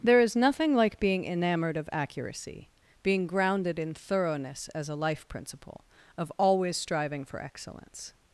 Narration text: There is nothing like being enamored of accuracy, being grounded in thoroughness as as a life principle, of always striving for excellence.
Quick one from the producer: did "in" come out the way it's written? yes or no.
yes